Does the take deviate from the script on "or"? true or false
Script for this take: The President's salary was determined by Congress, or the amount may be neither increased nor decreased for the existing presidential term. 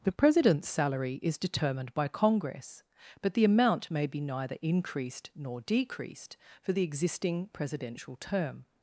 true